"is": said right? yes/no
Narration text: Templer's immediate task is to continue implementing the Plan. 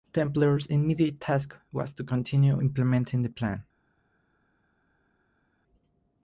no